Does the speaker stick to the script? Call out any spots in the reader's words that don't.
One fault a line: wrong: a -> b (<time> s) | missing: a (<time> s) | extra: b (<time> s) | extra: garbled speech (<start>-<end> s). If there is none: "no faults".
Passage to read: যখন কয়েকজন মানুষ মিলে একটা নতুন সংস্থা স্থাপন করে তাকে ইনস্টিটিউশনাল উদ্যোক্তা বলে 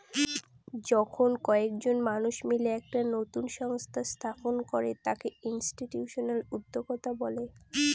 no faults